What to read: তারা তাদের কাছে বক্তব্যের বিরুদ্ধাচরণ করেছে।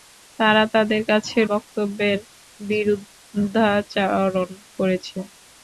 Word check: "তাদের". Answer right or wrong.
right